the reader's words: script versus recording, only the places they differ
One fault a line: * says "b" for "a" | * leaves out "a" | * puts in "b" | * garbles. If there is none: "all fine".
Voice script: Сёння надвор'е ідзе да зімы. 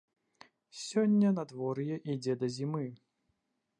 all fine